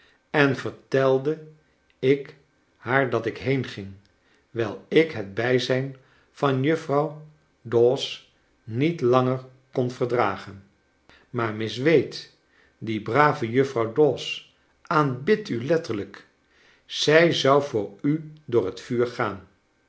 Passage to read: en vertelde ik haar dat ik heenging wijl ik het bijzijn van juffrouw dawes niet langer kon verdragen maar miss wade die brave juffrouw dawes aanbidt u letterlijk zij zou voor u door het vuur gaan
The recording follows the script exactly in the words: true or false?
true